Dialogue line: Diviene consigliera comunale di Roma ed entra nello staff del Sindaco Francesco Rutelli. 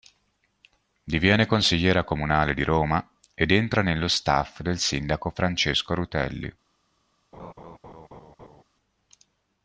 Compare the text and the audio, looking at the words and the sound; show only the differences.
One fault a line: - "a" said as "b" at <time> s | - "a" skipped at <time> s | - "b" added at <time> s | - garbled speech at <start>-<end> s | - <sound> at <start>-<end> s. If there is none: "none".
- laugh at 7.3-8.6 s